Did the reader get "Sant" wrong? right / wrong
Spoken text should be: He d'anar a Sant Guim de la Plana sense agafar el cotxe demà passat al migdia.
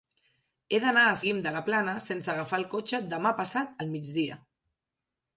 wrong